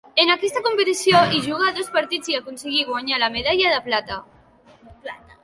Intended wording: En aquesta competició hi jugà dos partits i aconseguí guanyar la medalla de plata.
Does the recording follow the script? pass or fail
pass